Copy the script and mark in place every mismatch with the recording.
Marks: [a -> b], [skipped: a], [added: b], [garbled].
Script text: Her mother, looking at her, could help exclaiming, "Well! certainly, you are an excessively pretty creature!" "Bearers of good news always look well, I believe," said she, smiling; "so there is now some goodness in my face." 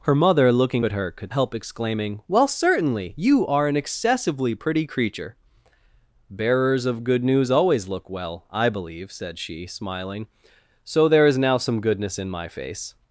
Her mother, looking at her, could help exclaiming, "Well! certainly, you are an excessively pretty creature!" "Bearers of good news always look well, I believe," said she, smiling; "so there is now some goodness in my face."